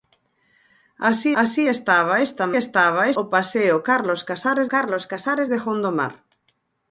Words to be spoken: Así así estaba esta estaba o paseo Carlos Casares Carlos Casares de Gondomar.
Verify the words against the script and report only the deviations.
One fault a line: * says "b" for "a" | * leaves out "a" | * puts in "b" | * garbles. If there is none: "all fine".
all fine